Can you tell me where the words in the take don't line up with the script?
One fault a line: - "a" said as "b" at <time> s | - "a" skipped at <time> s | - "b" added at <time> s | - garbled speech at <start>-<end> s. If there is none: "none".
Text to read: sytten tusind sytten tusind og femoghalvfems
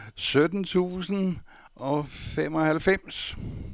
- "sytten tusind" skipped at 1.4 s